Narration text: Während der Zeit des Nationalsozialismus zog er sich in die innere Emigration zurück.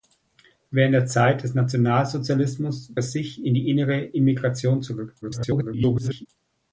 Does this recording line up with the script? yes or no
no